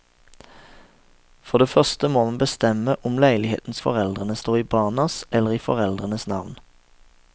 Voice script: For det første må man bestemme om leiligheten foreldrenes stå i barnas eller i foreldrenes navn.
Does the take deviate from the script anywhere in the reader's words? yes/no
no